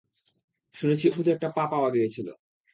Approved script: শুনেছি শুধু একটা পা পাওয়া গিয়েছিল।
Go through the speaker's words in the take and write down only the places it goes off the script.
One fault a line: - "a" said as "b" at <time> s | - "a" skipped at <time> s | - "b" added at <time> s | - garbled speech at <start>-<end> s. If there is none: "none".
none